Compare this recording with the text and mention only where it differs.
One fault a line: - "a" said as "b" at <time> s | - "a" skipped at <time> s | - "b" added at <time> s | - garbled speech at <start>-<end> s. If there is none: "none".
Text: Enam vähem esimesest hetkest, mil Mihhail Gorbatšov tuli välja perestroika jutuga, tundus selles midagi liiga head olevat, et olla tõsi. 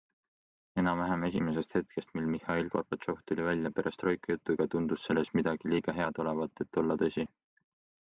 none